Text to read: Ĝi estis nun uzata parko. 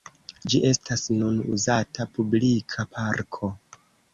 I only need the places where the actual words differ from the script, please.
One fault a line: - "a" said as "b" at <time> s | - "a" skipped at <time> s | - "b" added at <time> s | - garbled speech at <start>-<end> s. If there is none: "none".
- "estis" said as "estas" at 0.7 s
- "publika" added at 2.2 s